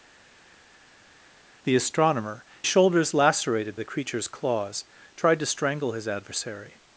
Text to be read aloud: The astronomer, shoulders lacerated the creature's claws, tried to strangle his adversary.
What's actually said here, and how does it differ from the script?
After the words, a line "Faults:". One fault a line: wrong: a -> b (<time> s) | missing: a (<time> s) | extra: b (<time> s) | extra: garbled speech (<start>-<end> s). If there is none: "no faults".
The astronomer, shoulders lacerated the creature's claws, tried to strangle his adversary.
Faults:
no faults